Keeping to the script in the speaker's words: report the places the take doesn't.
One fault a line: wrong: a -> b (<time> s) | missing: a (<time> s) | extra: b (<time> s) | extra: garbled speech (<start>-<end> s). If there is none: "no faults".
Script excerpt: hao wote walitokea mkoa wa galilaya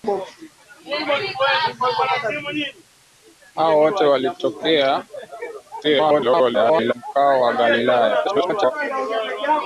extra: garbled speech (5.8-6.9 s)
extra: garbled speech (8.2-8.7 s)